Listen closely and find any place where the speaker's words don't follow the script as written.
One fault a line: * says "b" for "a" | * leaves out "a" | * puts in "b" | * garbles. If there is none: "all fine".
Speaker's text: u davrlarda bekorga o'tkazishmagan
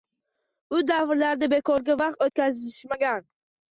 * puts in "vaqt"